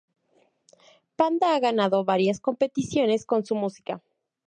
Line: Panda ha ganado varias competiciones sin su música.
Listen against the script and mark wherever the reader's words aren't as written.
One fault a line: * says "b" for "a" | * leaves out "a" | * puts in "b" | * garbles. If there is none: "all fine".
* says "con" for "sin"